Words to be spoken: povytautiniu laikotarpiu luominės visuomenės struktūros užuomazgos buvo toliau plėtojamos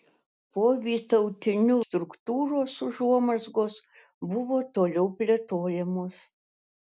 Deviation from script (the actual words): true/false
true